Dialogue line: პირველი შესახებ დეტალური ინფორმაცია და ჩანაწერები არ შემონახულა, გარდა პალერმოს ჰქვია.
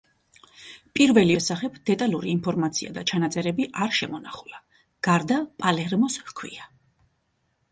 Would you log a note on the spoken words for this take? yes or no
no